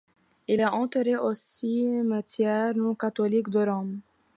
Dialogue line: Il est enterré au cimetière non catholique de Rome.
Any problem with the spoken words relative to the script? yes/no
no